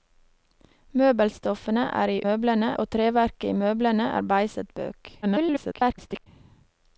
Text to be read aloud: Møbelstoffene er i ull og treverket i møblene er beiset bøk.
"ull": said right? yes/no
no